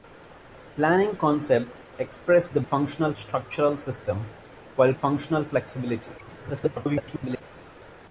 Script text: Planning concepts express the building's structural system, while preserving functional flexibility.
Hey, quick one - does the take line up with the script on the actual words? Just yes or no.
no